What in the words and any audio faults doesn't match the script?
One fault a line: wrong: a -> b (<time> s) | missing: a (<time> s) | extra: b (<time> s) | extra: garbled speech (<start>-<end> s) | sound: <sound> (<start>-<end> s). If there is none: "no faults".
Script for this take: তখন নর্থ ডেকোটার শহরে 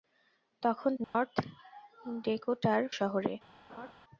sound: dropout (1.0-1.1 s)
sound: laugh (3.7-3.9 s)